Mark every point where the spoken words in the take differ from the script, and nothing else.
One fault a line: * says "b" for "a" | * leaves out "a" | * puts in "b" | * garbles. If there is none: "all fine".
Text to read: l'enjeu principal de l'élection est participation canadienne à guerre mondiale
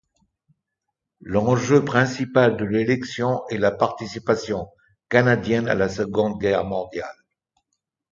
* puts in "la"
* puts in "la seconde"